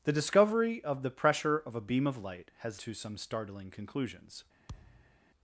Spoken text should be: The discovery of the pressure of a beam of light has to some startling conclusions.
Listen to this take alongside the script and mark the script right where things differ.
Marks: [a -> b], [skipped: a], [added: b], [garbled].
The discovery of the pressure of a beam of light has to some startling conclusions.